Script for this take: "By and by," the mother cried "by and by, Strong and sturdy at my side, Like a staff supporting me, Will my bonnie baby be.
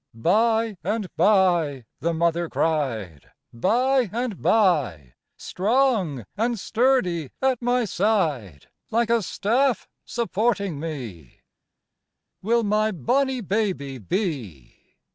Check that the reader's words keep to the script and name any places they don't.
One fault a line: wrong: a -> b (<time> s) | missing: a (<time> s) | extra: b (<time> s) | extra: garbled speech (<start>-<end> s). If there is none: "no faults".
no faults